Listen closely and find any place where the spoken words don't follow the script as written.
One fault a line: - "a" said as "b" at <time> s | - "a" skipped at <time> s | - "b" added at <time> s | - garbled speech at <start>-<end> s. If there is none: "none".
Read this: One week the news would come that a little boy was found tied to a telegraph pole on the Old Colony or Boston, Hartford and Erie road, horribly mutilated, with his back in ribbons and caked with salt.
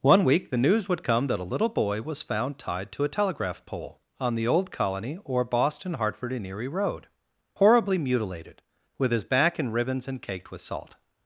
none